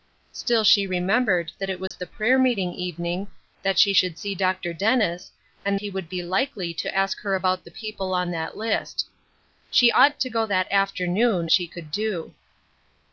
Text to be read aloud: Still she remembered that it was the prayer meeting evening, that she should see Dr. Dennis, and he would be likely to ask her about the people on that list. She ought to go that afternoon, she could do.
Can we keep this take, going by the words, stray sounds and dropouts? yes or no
no